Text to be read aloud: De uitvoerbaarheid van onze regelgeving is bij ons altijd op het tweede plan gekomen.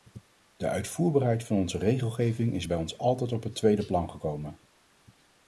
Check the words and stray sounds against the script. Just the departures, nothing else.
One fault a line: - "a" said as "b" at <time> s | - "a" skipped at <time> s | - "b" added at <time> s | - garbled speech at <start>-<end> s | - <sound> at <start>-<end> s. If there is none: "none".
none